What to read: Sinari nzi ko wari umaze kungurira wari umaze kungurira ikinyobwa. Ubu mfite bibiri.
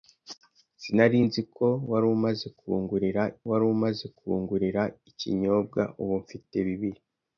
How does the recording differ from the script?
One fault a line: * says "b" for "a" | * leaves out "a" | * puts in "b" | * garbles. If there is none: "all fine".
all fine